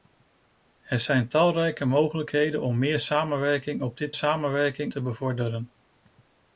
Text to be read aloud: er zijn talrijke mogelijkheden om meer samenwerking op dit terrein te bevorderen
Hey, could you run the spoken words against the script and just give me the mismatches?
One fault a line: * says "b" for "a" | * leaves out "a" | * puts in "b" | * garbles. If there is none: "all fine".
* says "samenwerking" for "terrein"